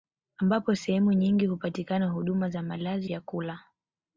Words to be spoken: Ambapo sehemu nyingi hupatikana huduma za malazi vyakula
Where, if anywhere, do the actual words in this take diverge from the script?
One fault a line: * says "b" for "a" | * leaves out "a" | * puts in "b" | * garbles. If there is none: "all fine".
all fine